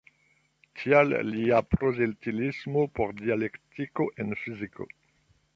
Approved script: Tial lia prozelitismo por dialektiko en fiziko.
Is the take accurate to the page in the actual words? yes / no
yes